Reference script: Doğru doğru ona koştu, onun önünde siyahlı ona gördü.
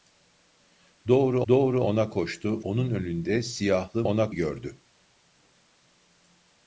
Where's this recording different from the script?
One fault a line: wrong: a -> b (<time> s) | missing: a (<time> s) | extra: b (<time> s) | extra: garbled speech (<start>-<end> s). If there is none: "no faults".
no faults